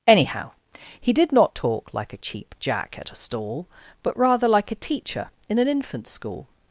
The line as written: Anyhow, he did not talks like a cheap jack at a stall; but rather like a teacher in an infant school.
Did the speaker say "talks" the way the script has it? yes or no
no